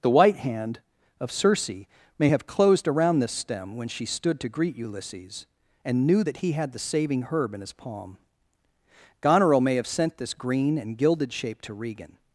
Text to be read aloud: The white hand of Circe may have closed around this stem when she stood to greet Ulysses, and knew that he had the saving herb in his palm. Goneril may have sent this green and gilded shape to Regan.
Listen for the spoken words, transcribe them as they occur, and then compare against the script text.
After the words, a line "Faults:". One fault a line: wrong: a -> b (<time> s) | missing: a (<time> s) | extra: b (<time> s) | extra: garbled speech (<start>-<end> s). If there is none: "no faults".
The white hand of Circe may have closed around this stem when she stood to greet Ulysses, and knew that he had the saving herb in his palm. Goneril may have sent this green and gilded shape to Regan.
Faults:
no faults